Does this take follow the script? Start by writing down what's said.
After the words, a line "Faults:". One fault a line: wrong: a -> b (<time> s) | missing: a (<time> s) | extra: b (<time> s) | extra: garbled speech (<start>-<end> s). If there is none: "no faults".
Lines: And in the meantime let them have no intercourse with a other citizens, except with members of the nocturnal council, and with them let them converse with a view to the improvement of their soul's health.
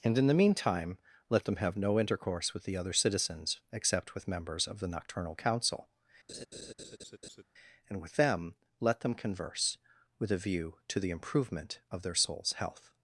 And in the meantime let them have no intercourse with the other citizens, except with members of the nocturnal council, and with them let them converse with a view to the improvement of their soul's health.
Faults:
wrong: a -> the (2.6 s)